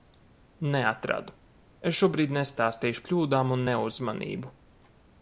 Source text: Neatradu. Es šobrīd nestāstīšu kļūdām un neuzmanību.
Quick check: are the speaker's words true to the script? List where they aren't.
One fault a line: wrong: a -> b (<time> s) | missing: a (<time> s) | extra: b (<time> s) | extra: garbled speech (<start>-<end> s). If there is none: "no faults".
no faults